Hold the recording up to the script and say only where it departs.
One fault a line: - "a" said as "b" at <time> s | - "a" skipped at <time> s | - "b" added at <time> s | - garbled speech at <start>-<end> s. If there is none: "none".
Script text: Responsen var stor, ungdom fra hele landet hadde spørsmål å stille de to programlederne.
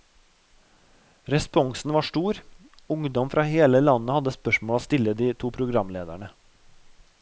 none